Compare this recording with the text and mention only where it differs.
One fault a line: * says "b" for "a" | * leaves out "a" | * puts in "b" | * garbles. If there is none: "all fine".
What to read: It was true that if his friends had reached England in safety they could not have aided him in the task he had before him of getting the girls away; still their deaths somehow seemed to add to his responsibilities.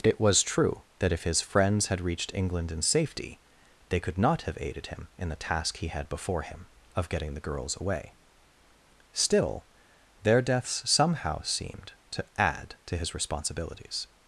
all fine